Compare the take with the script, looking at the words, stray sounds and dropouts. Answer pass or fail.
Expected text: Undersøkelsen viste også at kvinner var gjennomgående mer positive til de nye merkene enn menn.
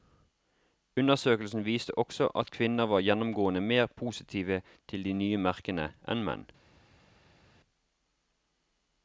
pass